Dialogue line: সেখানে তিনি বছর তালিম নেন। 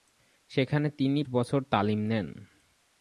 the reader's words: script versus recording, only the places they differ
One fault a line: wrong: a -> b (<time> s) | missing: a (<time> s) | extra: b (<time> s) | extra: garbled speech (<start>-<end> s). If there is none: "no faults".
no faults